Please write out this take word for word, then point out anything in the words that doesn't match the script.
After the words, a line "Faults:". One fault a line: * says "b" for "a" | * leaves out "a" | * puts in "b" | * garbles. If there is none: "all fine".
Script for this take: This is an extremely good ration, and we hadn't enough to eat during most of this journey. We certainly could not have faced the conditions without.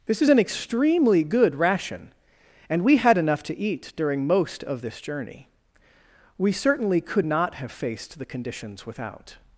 This is an extremely good ration, and we had enough to eat during most of this journey. We certainly could not have faced the conditions without.
Faults:
* says "had" for "hadn't"